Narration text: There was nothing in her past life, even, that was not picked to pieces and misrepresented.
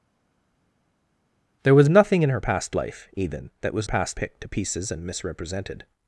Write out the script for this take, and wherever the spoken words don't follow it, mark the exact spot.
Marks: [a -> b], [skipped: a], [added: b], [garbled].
There was nothing in her past life, even, that was [not -> past] picked to pieces and misrepresented.